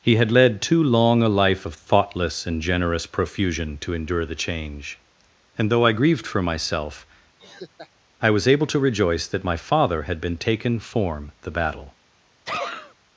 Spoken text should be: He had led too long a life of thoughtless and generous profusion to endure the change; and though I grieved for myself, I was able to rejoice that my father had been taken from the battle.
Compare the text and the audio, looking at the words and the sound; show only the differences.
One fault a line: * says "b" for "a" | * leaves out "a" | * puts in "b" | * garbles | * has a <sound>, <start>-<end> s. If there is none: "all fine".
* has a laugh, 7.4-7.9 s
* says "form" for "from"
* has a sneeze, 12.5-12.9 s